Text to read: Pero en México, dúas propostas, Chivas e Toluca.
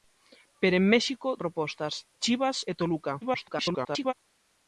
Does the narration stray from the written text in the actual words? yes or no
yes